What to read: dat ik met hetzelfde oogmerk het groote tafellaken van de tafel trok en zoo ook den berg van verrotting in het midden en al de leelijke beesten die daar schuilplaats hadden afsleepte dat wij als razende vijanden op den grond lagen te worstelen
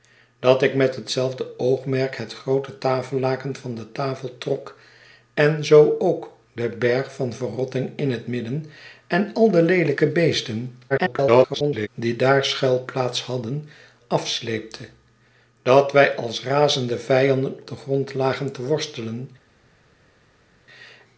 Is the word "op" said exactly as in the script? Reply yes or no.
no